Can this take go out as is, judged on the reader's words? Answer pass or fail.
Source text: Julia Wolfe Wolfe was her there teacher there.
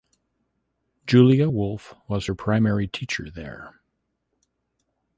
fail